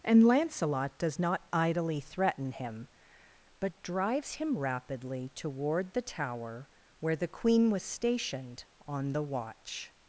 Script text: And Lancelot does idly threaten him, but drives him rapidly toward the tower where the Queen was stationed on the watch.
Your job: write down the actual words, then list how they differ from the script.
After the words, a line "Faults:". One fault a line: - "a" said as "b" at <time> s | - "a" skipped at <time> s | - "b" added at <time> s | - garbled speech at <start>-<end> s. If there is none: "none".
And Lancelot does not idly threaten him, but drives him rapidly toward the tower where the Queen was stationed on the watch.
Faults:
- "not" added at 1.2 s